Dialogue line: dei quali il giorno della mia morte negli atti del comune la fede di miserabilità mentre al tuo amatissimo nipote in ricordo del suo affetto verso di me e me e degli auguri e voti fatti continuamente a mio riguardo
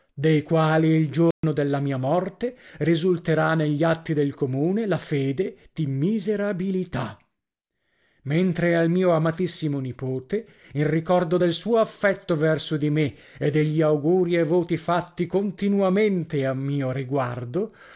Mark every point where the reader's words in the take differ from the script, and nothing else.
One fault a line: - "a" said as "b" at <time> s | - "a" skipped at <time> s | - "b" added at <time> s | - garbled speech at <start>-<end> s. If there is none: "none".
- "risulterà" added at 2.8 s
- "tuo" said as "mio" at 8.9 s
- "me e" skipped at 13.5 s